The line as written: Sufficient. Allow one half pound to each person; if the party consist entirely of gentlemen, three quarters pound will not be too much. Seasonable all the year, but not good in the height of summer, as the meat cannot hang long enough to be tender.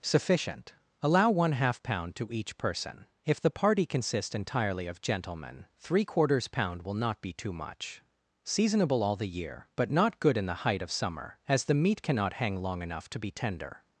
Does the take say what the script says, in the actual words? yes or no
no